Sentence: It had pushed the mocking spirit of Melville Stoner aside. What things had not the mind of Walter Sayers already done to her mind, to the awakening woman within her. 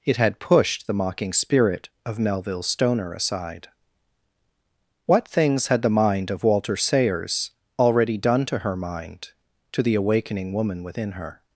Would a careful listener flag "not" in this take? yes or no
yes